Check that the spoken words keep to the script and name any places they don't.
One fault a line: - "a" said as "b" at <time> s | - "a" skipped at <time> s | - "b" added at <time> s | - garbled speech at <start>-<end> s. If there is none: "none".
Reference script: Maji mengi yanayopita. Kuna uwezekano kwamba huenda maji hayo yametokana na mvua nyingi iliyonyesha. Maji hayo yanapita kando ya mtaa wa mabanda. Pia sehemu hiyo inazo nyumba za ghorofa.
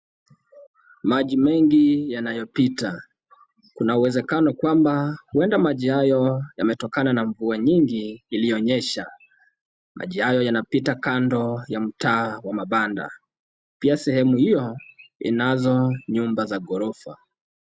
none